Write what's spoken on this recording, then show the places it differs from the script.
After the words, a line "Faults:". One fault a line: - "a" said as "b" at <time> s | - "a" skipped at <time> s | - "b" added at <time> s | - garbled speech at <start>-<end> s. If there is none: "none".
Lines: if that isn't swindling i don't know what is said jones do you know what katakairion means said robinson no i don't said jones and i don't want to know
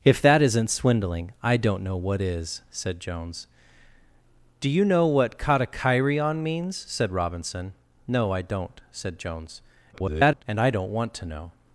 if that isn't swindling i don't know what is said jones do you know what katakairion means said robinson no i don't said jones [garbled] and i don't want to know
Faults:
- garbled speech at 9.9-10.4 s